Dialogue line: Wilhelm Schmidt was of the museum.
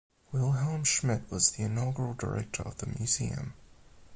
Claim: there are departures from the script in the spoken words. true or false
true